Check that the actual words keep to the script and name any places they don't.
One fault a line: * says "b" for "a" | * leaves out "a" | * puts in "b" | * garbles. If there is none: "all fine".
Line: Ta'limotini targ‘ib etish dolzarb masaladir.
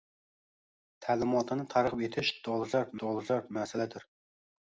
* puts in "dolzarb"